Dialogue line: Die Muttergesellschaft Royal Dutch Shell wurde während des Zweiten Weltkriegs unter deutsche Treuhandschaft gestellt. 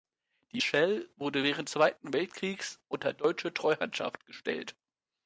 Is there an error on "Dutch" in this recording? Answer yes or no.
yes